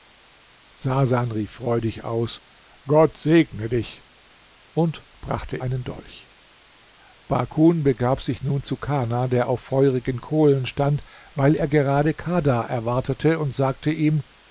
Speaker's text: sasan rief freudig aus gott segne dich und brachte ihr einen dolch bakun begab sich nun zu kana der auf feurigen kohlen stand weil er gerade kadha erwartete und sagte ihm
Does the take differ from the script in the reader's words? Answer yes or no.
yes